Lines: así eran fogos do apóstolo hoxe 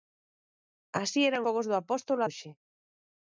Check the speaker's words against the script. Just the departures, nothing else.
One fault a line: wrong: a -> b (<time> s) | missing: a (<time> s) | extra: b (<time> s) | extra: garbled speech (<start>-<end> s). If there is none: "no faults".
no faults